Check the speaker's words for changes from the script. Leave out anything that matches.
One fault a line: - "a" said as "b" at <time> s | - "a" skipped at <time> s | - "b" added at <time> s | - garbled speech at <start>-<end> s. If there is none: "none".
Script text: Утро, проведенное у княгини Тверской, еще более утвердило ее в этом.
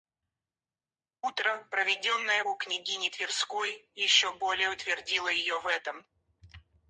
none